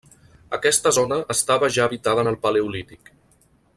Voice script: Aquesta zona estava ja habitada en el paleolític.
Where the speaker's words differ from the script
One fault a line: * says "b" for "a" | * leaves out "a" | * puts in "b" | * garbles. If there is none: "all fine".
all fine